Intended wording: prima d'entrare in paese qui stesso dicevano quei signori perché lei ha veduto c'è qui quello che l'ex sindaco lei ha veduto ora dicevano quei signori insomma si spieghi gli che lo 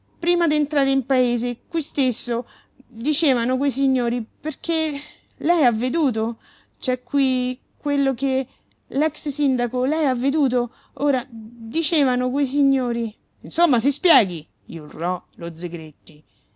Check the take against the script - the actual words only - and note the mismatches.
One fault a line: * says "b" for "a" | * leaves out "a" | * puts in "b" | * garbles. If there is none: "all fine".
* says "urlò" for "che"